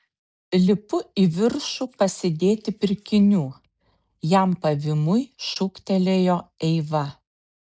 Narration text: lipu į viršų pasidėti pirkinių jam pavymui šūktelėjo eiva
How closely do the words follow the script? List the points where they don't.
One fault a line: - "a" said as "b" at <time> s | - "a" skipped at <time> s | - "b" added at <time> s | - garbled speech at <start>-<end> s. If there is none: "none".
none